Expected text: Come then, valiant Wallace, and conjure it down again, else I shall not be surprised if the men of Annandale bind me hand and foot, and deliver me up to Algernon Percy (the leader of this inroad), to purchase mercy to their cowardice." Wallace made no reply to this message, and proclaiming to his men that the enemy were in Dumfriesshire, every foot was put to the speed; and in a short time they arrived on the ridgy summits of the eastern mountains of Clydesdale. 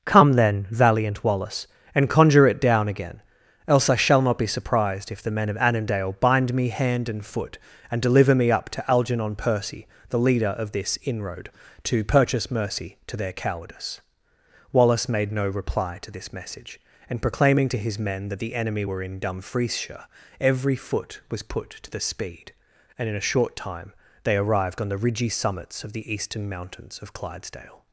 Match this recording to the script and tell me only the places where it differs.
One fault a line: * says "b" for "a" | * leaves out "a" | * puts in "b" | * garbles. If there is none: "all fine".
all fine